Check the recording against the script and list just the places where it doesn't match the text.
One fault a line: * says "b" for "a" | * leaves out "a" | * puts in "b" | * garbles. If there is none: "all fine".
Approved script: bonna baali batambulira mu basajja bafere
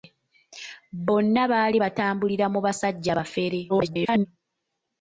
* garbles